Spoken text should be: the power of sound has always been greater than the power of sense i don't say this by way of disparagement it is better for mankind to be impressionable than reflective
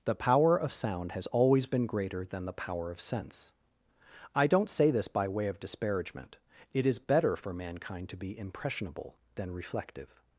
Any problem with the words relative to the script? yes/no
no